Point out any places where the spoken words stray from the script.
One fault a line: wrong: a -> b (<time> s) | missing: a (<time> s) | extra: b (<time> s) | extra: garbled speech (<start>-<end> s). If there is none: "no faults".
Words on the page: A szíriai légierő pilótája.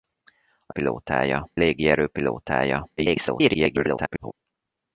wrong: szíriai -> pilótája (0.7 s)
extra: garbled speech (3.0-4.3 s)